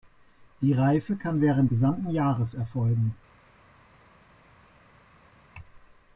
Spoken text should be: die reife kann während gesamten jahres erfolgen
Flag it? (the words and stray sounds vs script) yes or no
no